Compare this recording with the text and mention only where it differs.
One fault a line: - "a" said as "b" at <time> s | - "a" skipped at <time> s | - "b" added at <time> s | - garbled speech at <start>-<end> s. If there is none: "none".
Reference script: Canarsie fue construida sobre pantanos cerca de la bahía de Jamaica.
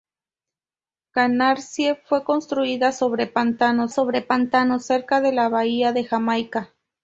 - "sobre pantanos" added at 3.9 s